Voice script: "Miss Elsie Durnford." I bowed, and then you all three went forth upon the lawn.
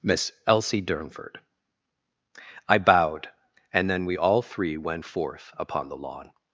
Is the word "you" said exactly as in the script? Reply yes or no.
no